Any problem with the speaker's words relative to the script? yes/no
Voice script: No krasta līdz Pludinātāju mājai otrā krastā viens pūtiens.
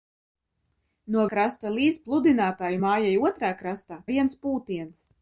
no